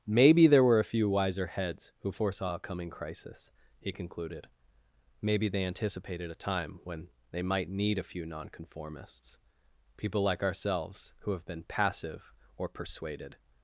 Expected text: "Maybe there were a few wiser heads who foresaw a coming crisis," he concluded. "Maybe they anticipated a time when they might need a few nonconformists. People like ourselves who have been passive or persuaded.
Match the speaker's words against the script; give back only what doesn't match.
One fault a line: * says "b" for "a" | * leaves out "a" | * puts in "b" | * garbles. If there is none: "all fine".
all fine